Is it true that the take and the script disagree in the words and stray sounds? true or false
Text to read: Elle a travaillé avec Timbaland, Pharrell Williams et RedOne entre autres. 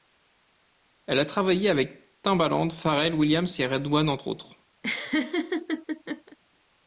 true